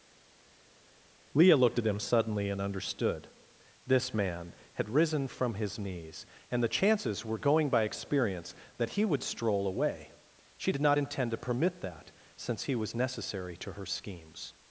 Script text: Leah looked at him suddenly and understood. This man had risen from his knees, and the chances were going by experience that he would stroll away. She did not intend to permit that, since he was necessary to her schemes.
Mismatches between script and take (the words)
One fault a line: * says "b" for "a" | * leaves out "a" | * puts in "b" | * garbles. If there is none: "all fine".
all fine